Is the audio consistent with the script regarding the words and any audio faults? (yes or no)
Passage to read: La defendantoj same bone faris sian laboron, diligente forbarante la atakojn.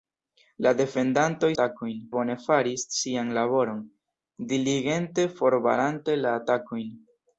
no